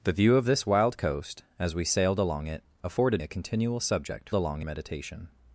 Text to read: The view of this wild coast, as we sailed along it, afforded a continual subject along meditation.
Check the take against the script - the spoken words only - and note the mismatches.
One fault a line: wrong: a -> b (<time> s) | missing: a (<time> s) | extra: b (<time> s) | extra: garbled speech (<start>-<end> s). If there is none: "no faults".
no faults